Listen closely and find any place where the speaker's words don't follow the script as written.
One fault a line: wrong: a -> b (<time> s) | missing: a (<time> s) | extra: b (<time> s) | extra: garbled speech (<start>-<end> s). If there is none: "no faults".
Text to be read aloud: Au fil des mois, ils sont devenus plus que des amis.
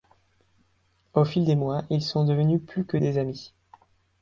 no faults